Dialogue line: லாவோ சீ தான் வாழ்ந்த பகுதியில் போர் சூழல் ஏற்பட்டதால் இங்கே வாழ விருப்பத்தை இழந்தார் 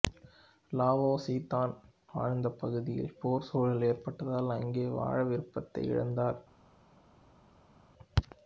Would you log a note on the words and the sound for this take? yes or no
yes